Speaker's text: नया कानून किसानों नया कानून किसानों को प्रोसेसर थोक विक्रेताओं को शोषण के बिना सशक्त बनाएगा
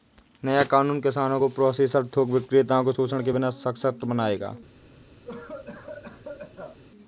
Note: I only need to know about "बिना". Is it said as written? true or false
true